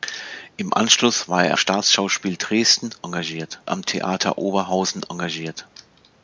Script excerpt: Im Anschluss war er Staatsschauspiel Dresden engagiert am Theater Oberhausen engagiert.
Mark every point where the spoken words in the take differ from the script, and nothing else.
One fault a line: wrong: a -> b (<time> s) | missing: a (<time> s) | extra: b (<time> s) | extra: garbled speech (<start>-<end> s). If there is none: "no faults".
no faults